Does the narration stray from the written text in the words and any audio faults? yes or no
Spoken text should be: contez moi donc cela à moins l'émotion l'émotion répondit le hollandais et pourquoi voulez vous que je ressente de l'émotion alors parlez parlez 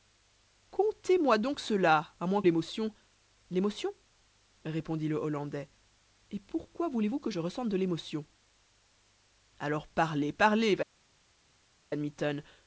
no